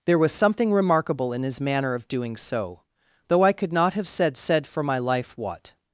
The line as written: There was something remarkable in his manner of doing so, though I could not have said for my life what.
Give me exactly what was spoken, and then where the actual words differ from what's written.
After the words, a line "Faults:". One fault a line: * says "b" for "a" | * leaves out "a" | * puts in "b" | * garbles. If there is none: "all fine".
There was something remarkable in his manner of doing so, though I could not have said said for my life what.
Faults:
* puts in "said"